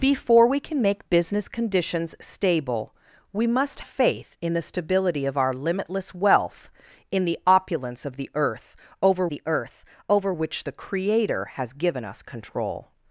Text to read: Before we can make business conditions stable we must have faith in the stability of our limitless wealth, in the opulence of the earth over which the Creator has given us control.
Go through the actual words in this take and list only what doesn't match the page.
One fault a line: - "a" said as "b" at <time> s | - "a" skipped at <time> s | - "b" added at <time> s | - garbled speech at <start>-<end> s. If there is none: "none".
- "have" skipped at 3.8 s
- "the earth over" added at 9.3 s